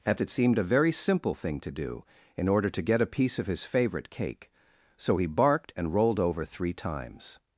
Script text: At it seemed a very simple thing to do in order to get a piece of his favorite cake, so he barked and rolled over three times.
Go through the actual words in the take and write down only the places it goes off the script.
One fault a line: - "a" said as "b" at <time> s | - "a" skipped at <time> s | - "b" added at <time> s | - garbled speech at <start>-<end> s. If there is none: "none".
none